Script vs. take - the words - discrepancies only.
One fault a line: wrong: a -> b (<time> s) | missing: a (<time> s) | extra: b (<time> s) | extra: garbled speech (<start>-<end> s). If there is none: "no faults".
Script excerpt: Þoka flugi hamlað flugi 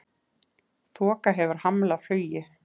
wrong: flugi -> hefur (1.4 s)